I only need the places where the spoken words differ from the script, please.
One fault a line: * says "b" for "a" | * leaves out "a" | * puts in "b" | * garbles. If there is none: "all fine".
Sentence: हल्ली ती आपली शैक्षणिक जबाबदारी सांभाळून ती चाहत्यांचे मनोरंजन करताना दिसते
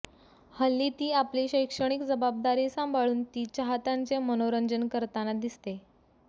all fine